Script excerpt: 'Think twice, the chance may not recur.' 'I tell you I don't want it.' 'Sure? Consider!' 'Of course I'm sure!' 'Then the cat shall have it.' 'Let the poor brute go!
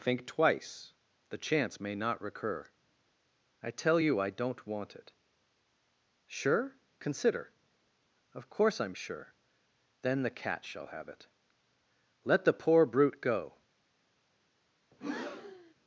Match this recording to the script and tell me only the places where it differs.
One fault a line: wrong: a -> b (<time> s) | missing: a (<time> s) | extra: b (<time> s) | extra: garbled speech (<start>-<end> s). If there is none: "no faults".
no faults